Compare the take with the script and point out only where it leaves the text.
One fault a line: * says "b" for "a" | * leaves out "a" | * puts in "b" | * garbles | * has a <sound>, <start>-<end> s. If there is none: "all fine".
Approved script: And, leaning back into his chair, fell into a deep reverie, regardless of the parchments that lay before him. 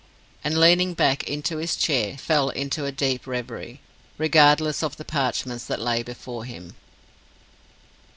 all fine